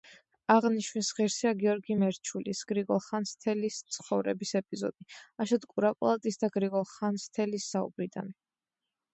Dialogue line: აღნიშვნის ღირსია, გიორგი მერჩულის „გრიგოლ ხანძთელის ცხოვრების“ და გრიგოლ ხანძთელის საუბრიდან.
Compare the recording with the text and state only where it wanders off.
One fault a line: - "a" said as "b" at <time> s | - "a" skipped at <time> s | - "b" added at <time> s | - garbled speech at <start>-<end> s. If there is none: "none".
- "ეპიზოდი აშოტ კურაპალატის" added at 4.6 s